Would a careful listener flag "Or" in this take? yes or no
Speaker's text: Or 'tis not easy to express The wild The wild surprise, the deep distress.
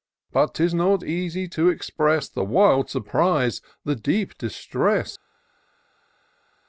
yes